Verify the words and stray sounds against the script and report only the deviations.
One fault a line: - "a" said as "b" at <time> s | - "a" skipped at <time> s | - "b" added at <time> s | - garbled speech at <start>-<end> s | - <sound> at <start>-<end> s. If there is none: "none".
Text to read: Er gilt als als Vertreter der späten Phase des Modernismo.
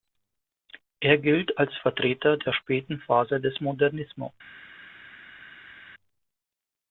- "als" skipped at 1.7 s